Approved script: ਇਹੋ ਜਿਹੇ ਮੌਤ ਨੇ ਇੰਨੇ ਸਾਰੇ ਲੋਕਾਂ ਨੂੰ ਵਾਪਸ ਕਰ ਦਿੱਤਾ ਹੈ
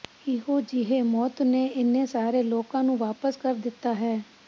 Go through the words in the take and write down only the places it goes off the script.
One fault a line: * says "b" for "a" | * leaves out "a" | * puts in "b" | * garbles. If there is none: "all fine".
all fine